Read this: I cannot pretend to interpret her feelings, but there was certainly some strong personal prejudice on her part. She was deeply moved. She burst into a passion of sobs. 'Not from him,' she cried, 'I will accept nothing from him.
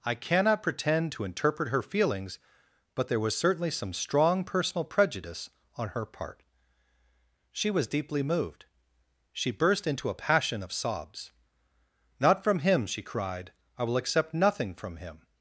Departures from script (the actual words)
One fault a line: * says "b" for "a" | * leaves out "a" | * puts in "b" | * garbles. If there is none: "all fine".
all fine